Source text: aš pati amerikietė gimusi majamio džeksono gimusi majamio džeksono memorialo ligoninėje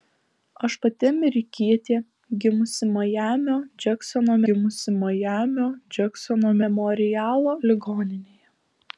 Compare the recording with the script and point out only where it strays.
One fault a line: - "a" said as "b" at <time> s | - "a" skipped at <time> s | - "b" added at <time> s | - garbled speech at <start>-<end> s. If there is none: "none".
none